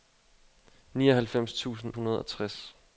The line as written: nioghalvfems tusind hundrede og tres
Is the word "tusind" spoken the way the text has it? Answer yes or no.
yes